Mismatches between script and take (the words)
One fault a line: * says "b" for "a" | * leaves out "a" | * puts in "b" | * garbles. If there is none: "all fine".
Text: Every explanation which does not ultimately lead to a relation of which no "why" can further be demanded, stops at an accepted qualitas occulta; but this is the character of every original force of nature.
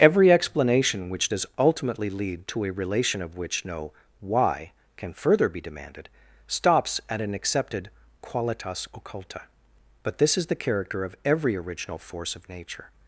* leaves out "not"